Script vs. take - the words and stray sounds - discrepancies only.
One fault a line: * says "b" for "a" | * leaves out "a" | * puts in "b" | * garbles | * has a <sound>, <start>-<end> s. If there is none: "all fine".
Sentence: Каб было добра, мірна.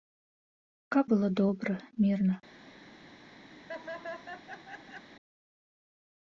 * has a laugh, 3.5-5.1 s